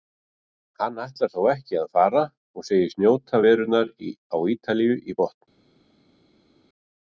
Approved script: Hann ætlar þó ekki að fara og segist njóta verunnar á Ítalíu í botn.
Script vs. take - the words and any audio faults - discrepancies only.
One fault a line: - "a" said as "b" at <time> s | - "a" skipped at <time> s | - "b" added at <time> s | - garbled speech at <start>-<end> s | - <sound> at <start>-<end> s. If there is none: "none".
none